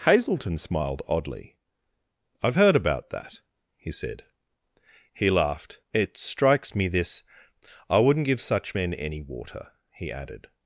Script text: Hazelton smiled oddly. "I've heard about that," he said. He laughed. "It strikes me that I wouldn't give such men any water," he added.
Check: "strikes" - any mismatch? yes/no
no